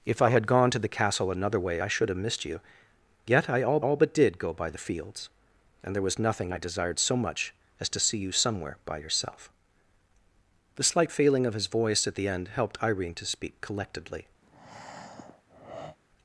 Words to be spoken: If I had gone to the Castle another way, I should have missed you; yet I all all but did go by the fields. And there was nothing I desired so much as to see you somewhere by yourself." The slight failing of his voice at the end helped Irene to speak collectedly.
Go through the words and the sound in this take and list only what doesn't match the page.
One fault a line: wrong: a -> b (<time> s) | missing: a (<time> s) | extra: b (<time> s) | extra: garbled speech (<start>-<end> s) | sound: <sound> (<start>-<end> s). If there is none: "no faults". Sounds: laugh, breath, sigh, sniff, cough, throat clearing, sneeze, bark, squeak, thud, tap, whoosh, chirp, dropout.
sound: breath (14.4-16.0 s)